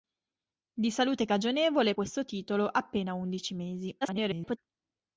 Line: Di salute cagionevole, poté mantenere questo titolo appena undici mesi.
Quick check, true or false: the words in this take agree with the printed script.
false